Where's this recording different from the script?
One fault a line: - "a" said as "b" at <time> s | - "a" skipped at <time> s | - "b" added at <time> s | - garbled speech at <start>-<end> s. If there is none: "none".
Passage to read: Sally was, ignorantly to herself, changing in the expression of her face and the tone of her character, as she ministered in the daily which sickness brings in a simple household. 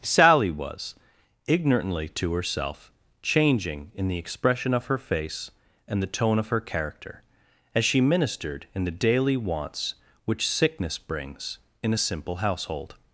- "wants" added at 9.4 s